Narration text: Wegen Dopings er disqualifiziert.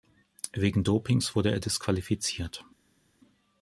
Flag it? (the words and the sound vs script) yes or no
yes